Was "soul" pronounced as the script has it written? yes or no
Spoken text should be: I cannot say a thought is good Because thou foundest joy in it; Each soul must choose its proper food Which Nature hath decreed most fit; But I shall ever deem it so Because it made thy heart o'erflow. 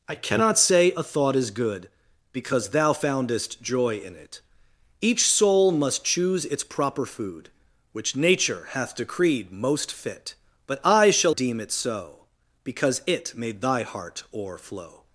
yes